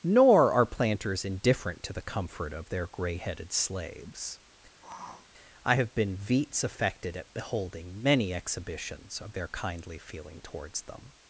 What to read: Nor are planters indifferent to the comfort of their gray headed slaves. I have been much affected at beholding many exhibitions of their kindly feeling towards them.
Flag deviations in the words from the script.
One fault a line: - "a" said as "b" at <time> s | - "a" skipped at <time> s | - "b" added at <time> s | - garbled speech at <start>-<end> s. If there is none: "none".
- "much" said as "veets" at 6.2 s